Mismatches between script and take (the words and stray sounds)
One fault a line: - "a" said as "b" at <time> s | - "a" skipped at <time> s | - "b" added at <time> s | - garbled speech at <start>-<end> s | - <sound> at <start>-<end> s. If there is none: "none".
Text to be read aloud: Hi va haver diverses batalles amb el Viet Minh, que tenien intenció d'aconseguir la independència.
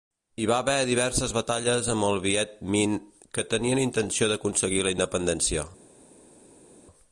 none